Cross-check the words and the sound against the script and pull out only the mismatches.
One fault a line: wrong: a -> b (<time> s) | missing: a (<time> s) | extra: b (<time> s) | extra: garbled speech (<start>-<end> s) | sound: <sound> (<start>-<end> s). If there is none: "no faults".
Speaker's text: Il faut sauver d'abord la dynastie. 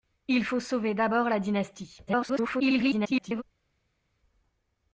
extra: garbled speech (2.1-3.4 s)